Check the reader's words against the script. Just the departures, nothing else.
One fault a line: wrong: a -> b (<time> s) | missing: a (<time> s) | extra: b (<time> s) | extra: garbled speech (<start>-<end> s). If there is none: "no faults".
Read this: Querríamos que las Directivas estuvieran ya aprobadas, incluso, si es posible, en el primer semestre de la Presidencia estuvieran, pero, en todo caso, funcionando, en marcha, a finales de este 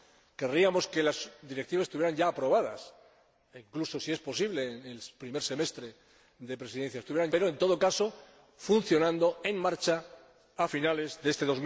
no faults